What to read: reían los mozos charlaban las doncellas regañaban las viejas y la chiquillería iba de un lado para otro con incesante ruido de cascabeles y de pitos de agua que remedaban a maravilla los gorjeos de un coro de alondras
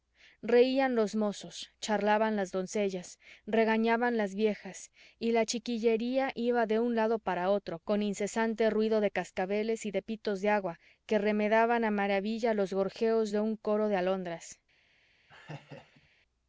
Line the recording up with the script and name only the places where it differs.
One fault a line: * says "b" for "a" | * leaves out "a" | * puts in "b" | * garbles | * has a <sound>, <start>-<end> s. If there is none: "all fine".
* has a laugh, 15.3-16.1 s